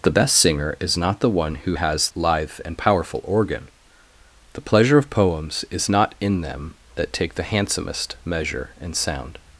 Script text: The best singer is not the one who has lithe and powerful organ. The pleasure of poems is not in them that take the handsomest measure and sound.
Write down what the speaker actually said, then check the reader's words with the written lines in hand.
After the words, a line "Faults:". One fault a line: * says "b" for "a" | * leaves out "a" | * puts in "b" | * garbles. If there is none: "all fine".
The best singer is not the one who has lithe and powerful organ. The pleasure of poems is not in them that take the handsomest measure and sound.
Faults:
all fine